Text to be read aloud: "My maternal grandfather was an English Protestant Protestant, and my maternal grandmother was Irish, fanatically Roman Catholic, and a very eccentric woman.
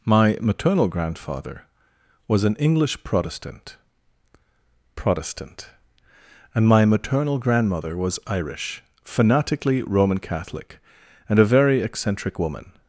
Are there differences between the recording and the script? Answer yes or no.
no